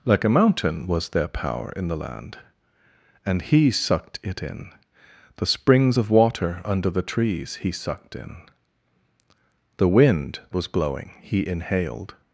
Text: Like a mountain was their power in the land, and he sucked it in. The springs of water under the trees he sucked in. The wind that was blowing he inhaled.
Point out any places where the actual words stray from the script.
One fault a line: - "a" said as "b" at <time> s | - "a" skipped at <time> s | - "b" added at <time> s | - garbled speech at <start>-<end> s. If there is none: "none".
- "that" skipped at 10.4 s